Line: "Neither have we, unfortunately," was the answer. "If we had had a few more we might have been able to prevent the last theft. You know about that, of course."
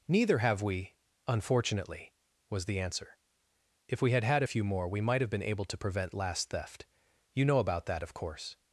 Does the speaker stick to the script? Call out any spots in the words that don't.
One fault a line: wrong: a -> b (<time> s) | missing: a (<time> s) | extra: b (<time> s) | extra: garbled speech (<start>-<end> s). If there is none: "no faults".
missing: the (6.1 s)